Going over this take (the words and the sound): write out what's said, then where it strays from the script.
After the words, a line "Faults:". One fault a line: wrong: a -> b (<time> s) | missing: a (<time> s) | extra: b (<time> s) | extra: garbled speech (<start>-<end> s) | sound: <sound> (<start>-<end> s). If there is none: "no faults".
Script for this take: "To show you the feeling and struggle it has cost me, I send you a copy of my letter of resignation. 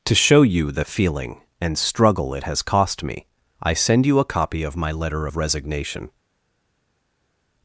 "To show you the feeling and struggle it has cost me, I send you a copy of my letter of resignation.
Faults:
no faults